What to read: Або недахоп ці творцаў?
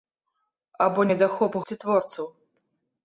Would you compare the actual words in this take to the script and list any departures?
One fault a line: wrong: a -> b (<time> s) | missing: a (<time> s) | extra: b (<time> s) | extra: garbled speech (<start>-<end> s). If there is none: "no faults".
no faults